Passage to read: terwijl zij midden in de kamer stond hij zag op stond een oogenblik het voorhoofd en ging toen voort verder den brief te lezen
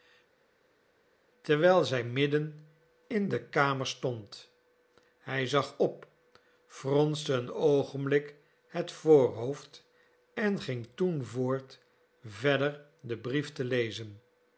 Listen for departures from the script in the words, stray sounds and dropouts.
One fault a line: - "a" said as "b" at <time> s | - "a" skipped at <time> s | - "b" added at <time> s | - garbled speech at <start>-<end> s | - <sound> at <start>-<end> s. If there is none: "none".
- "stond" said as "fronste" at 6.6 s